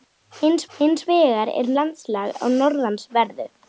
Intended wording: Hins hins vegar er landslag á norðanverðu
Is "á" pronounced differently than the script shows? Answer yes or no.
no